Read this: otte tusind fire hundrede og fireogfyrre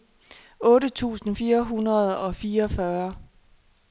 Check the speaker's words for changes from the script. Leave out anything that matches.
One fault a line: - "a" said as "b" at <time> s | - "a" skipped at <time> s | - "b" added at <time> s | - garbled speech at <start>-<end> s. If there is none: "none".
none